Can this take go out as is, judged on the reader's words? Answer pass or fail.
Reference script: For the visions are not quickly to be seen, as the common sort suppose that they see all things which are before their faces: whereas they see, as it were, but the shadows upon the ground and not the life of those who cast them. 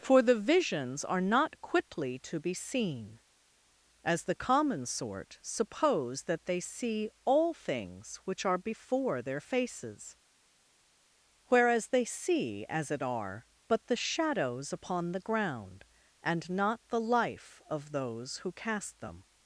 fail